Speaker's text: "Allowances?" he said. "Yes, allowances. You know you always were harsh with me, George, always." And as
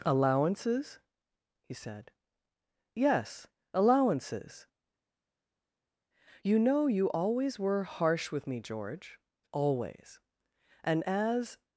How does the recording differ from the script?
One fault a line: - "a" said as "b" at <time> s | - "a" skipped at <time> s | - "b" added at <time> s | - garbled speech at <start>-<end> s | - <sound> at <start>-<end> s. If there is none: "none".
none